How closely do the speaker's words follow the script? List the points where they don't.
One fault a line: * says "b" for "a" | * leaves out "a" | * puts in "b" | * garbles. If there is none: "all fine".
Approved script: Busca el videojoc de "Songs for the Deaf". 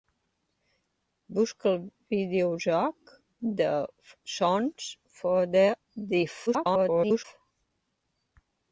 * garbles